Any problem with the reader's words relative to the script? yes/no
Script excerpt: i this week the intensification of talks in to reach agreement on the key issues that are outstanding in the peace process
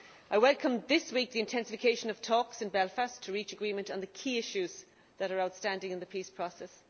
yes